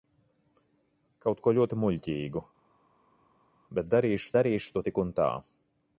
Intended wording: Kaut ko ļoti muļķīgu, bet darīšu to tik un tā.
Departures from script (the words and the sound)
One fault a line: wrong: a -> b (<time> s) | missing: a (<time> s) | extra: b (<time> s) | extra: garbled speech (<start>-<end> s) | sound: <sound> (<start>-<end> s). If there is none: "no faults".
extra: darīšu (4.4 s)